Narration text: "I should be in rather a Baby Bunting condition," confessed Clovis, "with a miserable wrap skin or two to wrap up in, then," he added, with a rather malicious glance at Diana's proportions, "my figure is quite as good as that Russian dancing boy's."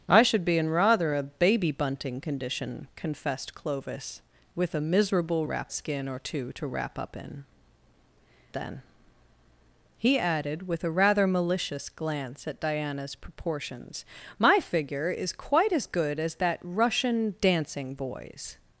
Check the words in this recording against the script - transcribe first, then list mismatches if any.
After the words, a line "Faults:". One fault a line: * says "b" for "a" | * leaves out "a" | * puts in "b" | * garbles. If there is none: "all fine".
"I should be in rather a Baby Bunting condition," confessed Clovis, "with a miserable wrap skin or two to wrap up in, then," he added, with a rather malicious glance at Diana's proportions, "my figure is quite as good as that Russian dancing boy's."
Faults:
all fine